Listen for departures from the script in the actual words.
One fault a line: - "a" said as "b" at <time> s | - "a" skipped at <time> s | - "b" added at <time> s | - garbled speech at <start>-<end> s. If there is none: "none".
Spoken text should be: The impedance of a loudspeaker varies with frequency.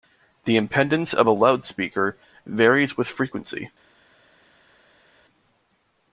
none